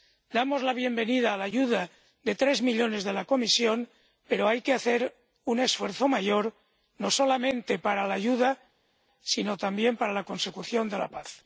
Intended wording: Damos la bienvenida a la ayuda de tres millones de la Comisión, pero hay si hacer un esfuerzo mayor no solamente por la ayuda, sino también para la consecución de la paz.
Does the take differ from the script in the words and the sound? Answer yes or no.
yes